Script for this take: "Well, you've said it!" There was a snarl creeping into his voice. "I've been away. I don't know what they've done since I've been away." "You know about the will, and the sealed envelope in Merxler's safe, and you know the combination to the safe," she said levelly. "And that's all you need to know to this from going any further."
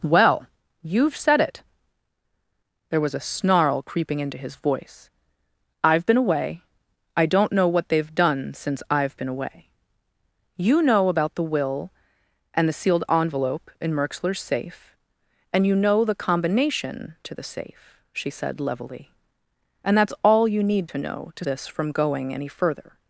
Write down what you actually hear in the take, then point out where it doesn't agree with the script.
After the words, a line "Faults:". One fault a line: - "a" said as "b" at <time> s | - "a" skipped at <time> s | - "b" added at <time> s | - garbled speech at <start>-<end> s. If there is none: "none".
"Well, you've said it!" There was a snarl creeping into his voice. "I've been away. I don't know what they've done since I've been away." "You know about the will, and the sealed envelope in Merxler's safe, and you know the combination to the safe," she said levelly. "And that's all you need to know to this from going any further."
Faults:
none